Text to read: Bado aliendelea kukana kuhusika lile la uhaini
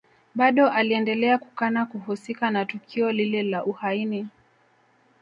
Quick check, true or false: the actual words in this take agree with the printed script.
false